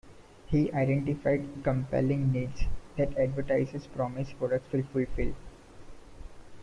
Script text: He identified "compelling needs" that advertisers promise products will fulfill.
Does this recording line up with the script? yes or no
yes